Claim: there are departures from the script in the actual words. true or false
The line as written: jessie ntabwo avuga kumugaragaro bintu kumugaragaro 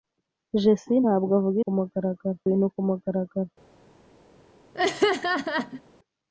false